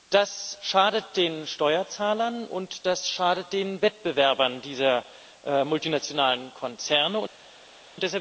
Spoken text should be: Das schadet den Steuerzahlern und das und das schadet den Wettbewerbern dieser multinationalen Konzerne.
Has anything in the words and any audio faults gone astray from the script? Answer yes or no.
yes